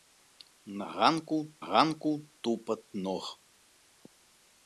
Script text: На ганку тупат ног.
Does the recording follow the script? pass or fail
fail